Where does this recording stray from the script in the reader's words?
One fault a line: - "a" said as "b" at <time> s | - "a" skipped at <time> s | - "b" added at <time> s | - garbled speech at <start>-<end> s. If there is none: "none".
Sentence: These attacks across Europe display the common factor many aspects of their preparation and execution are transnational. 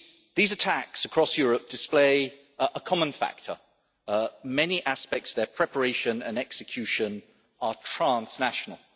- "the" said as "a" at 2.6 s